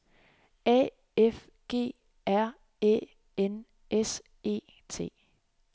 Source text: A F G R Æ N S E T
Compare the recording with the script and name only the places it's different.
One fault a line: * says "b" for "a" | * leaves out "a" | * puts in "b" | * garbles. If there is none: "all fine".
all fine